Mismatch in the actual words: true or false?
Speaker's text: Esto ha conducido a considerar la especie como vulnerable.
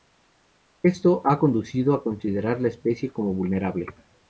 false